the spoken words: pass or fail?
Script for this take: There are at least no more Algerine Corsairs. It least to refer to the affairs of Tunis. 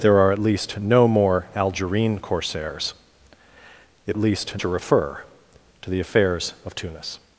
pass